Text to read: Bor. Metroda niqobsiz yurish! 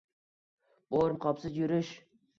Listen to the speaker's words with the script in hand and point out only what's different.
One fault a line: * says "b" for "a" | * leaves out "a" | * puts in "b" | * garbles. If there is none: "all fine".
* leaves out "Metroda"